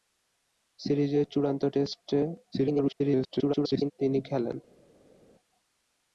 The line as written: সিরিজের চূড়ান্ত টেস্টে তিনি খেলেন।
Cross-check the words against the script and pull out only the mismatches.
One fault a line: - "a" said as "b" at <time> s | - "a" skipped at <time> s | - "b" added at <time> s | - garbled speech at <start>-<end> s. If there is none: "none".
- garbled speech at 2.5-3.9 s